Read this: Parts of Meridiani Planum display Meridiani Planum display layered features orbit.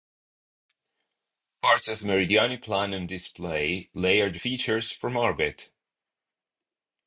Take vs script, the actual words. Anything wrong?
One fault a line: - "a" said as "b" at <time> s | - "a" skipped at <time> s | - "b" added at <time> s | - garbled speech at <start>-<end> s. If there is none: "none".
- "Meridiani Planum display" skipped at 3.9 s
- "from" added at 4.9 s